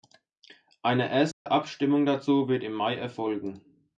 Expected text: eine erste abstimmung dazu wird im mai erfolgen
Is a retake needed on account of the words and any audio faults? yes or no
yes